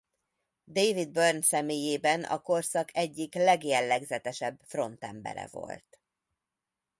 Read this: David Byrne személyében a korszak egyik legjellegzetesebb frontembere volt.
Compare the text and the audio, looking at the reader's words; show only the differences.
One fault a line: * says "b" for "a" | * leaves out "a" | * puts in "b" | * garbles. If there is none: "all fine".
all fine